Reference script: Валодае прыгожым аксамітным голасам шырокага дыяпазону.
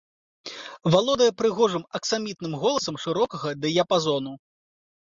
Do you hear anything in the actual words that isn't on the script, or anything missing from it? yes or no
no